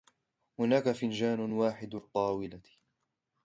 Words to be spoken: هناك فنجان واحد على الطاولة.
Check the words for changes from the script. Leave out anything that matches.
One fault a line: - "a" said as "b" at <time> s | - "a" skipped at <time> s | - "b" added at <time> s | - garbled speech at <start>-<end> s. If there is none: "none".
- "على" skipped at 2.0 s